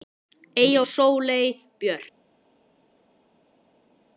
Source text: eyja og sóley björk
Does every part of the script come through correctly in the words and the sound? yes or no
yes